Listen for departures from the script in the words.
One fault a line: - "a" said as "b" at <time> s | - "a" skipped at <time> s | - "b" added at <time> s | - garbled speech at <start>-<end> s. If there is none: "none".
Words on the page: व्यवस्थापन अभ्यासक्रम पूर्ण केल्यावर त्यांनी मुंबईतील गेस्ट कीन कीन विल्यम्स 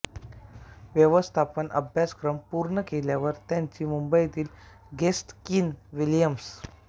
- "कीन" skipped at 5.7 s